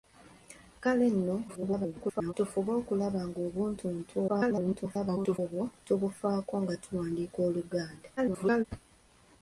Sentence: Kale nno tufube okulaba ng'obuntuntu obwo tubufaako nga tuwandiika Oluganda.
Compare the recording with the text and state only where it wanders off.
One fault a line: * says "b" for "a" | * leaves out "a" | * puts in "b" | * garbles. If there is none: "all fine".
* garbles
* garbles
* garbles